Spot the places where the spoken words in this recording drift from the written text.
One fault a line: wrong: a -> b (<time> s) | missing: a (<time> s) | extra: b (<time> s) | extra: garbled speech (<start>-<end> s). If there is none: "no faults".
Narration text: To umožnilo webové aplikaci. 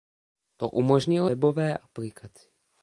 no faults